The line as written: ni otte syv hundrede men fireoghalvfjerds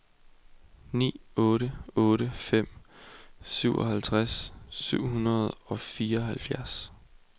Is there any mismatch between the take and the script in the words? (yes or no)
yes